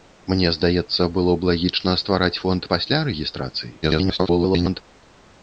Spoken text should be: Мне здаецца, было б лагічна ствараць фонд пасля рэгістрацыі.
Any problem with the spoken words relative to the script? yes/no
yes